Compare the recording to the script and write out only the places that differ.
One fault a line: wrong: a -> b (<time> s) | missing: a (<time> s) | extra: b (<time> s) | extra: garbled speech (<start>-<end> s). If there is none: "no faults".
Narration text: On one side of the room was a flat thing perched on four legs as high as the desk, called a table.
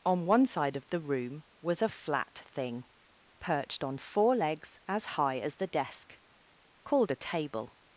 no faults